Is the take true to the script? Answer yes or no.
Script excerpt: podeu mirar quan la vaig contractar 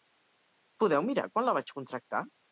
yes